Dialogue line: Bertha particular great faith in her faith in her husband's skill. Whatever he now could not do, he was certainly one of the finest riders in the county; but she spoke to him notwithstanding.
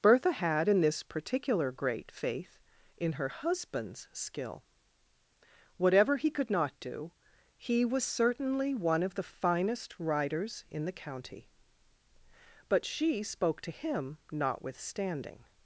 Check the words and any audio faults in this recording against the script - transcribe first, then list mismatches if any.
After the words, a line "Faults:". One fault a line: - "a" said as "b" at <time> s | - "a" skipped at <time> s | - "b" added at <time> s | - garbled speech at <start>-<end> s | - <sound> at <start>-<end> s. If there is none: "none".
Bertha had in this particular great faith in her husband's skill. Whatever he could not do, he was certainly one of the finest riders in the county; but she spoke to him notwithstanding.
Faults:
- "particular great faith in her" said as "had in this particular great" at 0.3 s
- "now" skipped at 6.3 s